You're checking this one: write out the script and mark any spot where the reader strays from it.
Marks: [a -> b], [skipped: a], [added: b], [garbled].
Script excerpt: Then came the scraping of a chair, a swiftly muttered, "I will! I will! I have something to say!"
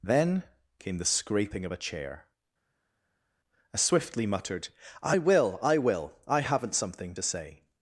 Then came the scraping of a chair, a swiftly muttered, "I will! I will! I [have -> haven't] something to say!"